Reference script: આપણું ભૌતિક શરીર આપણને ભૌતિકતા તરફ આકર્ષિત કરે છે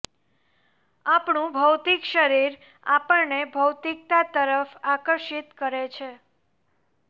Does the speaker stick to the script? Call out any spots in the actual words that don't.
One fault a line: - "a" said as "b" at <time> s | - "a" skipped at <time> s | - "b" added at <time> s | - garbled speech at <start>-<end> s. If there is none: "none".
none